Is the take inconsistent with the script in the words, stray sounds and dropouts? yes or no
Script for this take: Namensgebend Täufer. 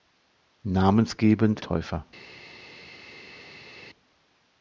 no